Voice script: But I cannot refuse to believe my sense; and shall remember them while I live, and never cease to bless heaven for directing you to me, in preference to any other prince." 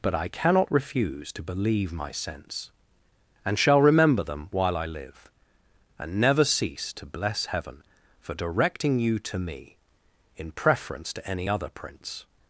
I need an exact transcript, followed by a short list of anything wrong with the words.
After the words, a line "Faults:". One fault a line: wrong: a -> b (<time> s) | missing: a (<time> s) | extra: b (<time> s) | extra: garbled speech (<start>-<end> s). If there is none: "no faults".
But I cannot refuse to believe my sense; and shall remember them while I live, and never cease to bless heaven for directing you to me, in preference to any other prince."
Faults:
no faults